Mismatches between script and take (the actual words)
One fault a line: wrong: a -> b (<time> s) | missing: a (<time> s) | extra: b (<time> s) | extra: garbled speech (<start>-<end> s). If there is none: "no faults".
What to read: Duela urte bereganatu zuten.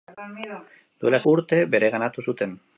no faults